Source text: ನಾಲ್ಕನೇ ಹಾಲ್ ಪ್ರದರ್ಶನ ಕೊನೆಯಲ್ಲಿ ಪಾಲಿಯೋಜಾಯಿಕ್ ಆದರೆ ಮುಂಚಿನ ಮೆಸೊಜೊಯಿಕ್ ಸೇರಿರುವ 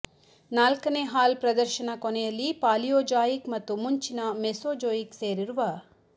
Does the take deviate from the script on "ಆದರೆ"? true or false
true